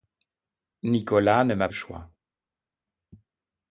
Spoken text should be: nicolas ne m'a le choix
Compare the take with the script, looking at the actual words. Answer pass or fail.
pass